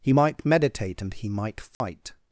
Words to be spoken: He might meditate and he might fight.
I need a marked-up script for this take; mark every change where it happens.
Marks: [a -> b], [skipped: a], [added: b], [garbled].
He might meditate and he might fight.